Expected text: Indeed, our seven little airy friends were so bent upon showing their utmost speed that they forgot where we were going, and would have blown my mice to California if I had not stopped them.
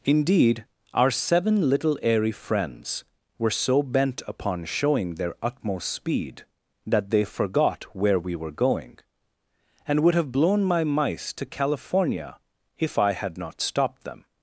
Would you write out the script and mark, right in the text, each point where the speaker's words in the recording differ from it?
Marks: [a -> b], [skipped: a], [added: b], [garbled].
Indeed, our seven little airy friends were so bent upon showing their utmost speed that they forgot where we were going, and would have blown my mice to California if I had not stopped them.